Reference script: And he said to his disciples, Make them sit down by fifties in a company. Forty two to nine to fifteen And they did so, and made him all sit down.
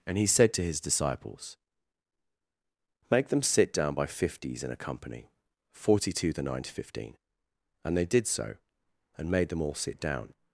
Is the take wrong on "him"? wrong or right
wrong